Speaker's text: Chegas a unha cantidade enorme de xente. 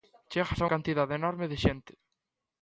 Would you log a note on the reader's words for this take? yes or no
yes